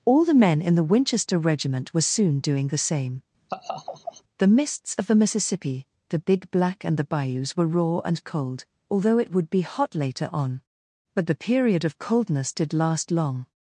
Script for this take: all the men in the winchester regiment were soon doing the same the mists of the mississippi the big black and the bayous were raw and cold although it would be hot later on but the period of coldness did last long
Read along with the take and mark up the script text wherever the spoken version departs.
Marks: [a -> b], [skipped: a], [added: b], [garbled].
all the men in the winchester regiment were soon doing the same the mists of the mississippi the big black and the bayous were raw and cold although it would be hot later on but the period of coldness did last long